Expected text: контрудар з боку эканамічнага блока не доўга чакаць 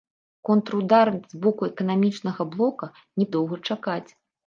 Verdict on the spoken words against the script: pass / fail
pass